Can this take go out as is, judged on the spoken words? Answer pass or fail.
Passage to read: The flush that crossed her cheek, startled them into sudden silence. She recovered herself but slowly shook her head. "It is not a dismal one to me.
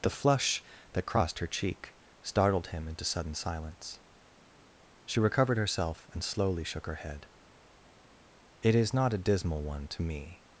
fail